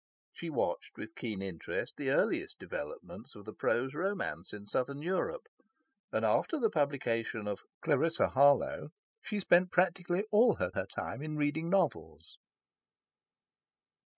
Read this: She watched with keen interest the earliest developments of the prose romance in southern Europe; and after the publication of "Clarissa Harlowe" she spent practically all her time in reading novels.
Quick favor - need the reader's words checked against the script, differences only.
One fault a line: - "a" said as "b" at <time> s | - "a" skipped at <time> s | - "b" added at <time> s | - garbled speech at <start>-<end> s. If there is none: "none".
- "her" added at 10.7 s